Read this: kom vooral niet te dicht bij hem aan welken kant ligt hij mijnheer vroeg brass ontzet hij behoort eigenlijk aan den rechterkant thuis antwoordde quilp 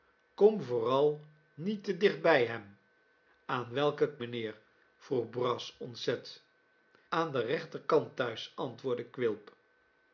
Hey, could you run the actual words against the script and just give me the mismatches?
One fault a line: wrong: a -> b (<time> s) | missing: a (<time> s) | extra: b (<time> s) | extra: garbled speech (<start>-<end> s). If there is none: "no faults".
missing: kant ligt hij (4.2 s)
missing: hij behoort eigenlijk (6.4 s)